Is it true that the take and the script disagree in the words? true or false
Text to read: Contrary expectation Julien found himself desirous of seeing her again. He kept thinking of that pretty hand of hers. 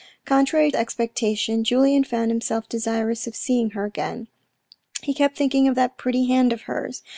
false